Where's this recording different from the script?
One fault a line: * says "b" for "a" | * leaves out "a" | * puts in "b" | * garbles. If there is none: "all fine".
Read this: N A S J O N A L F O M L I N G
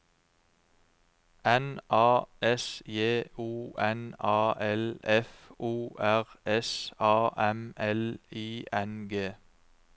* puts in "R S A"